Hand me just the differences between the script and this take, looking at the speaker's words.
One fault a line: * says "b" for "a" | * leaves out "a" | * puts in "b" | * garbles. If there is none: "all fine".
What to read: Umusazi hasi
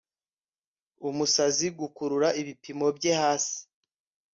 * puts in "gukurura ibipimo bye"